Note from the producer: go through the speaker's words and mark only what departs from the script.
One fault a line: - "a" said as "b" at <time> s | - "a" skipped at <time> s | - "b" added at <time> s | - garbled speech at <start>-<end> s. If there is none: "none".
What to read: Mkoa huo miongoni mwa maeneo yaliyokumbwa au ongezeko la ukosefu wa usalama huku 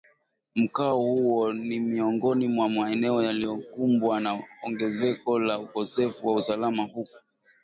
- "ni" added at 1.5 s
- "au" said as "na" at 4.2 s